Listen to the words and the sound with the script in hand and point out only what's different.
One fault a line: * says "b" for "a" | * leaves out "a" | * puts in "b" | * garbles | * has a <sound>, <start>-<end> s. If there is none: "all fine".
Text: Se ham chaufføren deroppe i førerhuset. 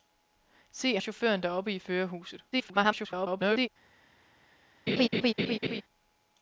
* leaves out "ham"
* garbles
* has a laugh, 4.9-5.8 s